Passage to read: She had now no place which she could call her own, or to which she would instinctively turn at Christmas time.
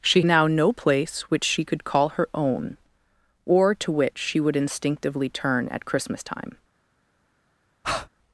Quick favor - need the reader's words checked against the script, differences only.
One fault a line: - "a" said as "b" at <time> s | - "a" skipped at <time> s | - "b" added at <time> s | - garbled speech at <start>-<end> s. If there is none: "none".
- "had" skipped at 0.2 s